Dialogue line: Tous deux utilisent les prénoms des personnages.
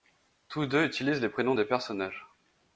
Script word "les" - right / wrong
right